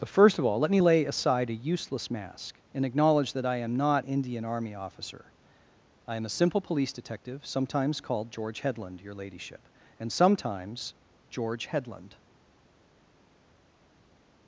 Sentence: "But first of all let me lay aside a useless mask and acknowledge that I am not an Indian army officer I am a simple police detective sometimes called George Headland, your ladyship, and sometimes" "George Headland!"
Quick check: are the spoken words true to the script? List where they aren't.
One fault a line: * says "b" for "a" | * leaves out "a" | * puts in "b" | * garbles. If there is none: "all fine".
* leaves out "an"